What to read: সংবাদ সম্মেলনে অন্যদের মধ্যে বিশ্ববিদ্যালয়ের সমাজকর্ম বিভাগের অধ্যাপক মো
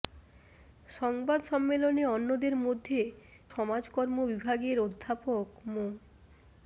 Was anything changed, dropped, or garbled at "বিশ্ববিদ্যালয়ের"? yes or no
yes